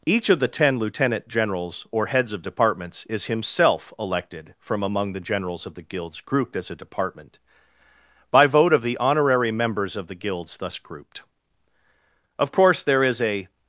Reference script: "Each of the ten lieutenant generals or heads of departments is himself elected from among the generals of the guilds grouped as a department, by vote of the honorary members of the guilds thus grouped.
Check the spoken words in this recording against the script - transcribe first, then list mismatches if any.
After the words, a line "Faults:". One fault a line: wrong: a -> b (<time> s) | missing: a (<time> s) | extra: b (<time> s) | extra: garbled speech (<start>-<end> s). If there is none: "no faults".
"Each of the ten lieutenant generals or heads of departments is himself elected from among the generals of the guilds grouped as a department, by vote of the honorary members of the guilds thus grouped. Of course there is a
Faults:
extra: Of course there is a (12.4 s)